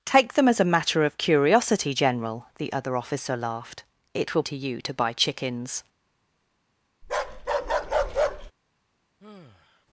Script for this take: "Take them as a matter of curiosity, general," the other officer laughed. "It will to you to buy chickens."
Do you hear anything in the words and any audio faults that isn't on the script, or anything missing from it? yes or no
yes